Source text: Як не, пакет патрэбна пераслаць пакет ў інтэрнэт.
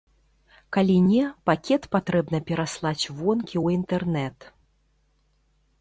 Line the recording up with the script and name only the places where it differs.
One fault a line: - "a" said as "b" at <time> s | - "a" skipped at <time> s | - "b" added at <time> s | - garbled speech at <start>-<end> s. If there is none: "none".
- "Як" said as "Калі" at 0.8 s
- "пакет" said as "вонкі" at 3.2 s